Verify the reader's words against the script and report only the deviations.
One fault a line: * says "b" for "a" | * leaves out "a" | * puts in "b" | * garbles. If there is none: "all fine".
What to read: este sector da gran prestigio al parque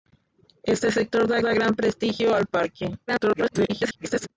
* puts in "da"
* garbles